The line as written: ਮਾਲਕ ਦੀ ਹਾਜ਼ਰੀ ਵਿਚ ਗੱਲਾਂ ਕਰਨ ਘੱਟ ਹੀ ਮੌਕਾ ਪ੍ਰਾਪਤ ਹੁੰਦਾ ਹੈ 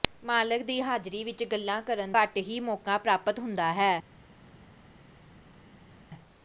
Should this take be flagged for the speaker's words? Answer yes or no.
no